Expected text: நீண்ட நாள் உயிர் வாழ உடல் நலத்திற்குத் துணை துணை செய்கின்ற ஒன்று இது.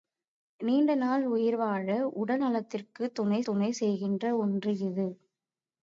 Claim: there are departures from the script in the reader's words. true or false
false